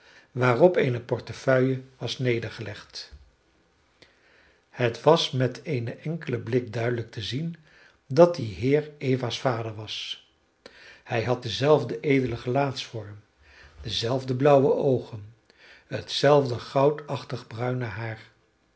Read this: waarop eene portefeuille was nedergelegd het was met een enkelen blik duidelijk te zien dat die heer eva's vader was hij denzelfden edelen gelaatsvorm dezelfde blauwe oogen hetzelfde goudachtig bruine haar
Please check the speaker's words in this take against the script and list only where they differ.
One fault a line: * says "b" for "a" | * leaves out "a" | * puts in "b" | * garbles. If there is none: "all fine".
* puts in "had"